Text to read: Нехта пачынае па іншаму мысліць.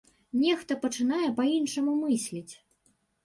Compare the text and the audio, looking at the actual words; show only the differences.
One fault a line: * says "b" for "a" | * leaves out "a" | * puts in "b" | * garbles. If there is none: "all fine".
all fine